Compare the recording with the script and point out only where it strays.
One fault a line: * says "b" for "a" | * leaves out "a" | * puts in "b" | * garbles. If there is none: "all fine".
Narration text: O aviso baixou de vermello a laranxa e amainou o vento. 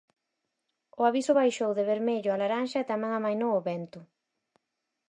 * puts in "tamén"